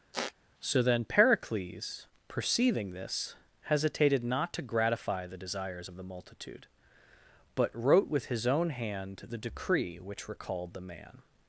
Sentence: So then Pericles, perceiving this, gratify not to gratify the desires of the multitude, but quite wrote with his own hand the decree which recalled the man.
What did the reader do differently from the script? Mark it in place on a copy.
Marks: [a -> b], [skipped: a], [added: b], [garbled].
So then Pericles, perceiving this, [gratify -> hesitated] not to gratify the desires of the multitude, but [skipped: quite] wrote with his own hand the decree which recalled the man.